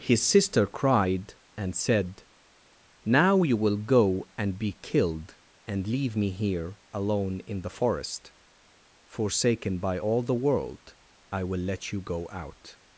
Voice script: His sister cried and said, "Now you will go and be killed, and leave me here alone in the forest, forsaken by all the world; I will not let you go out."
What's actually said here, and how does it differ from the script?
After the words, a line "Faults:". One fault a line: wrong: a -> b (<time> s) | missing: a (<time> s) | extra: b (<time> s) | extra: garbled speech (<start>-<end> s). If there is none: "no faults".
His sister cried and said, "Now you will go and be killed, and leave me here alone in the forest, forsaken by all the world; I will let you go out."
Faults:
missing: not (11.6 s)